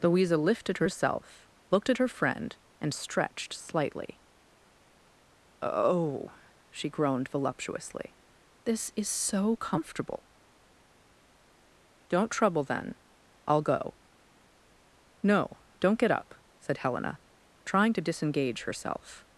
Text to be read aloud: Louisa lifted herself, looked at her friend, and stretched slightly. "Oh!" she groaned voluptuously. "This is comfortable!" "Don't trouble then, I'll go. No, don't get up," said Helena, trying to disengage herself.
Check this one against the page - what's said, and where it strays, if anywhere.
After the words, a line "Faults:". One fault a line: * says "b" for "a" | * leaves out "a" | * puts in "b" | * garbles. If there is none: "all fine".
Louisa lifted herself, looked at her friend, and stretched slightly. "Oh!" she groaned voluptuously. "This is so comfortable!" "Don't trouble then, I'll go. No, don't get up," said Helena, trying to disengage herself.
Faults:
* puts in "so"